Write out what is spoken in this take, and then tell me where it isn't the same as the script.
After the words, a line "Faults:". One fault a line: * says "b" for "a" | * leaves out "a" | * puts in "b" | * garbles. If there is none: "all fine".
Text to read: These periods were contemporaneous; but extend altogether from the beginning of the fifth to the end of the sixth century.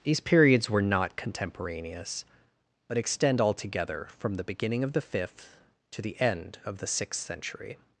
These periods were not contemporaneous; but extend altogether from the beginning of the fifth to the end of the sixth century.
Faults:
* puts in "not"